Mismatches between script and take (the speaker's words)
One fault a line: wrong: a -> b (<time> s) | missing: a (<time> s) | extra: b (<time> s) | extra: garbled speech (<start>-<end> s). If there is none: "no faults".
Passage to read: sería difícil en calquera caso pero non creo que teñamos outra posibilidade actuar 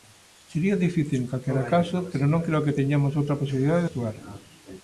no faults